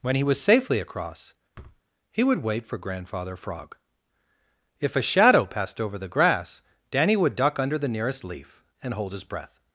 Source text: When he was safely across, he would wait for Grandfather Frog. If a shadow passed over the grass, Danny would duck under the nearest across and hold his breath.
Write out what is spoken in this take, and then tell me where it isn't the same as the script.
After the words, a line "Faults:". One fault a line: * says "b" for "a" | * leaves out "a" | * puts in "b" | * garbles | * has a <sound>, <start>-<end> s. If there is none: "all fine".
When he was safely across, he would wait for Grandfather Frog. If a shadow passed over the grass, Danny would duck under the nearest leaf and hold his breath.
Faults:
* has a thud, 1.5-1.8 s
* says "leaf" for "across"